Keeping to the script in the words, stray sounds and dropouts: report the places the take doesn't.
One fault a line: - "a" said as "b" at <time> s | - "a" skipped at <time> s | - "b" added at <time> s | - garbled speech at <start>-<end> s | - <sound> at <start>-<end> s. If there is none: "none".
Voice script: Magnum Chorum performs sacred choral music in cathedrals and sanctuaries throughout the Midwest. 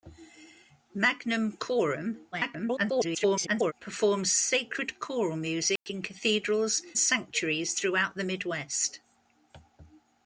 - garbled speech at 2.3-3.7 s
- dropout at 5.8-5.9 s
- "and" skipped at 6.8 s